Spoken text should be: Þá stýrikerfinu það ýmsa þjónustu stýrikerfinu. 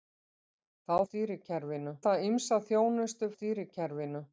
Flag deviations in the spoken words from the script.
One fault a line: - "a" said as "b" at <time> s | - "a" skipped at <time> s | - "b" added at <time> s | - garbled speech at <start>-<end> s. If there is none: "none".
none